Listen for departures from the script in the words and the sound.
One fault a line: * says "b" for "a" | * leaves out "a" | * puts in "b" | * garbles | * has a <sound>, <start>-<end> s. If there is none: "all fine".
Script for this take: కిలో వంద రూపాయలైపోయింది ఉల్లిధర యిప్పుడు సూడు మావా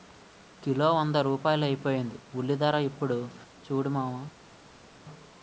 all fine